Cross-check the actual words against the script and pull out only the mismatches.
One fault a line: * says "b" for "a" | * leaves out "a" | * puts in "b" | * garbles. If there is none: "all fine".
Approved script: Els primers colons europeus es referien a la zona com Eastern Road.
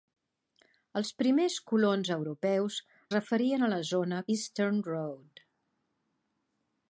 * leaves out "es"
* leaves out "com"